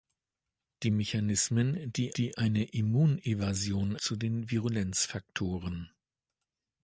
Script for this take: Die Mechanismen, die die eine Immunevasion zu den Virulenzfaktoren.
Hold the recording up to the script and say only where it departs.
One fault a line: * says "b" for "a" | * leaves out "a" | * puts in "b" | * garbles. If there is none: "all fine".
all fine